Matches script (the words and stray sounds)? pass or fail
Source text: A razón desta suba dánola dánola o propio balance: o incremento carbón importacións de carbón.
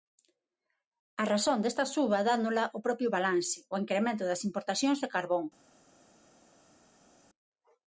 fail